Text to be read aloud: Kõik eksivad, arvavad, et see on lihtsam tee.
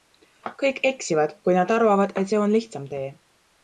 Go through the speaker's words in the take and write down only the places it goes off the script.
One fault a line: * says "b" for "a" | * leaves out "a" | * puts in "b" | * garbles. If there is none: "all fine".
* puts in "kui nad"